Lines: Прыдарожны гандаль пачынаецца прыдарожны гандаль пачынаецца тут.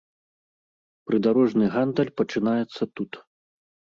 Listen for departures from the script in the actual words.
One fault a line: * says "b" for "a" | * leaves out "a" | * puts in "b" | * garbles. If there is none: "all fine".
* leaves out "прыдарожны гандаль пачынаецца"